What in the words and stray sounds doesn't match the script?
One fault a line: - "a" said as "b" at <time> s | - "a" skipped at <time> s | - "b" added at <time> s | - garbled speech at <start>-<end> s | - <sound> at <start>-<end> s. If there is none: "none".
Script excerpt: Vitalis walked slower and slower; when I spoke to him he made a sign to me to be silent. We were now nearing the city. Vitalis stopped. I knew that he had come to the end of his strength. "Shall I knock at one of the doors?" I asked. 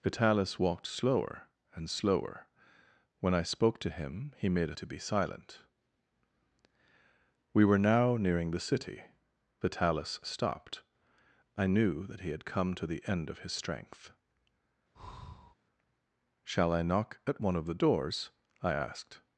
- "sign to me" skipped at 4.8 s
- breath at 14.9-15.5 s